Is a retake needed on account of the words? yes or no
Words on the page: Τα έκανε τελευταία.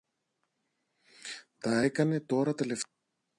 yes